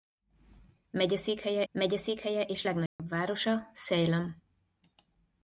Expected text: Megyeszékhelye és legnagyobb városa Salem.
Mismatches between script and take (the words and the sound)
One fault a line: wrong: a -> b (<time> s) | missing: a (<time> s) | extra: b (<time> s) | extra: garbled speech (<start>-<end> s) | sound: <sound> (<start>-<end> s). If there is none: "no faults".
extra: megyeszékhelye (1.7 s)
sound: dropout (2.9-3.0 s)